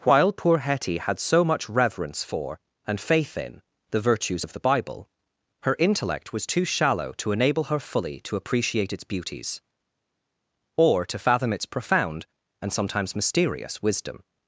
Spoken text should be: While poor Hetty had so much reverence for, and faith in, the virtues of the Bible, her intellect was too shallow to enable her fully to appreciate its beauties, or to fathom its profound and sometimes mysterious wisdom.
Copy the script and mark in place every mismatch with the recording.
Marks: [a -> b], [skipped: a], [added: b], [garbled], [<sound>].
While poor Hetty had so much reverence for, and faith in, the virtues of the Bible, her intellect was too shallow to enable her fully to appreciate its beauties, or to fathom its profound and sometimes mysterious wisdom.